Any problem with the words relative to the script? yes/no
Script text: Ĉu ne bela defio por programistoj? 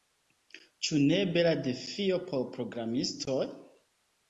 no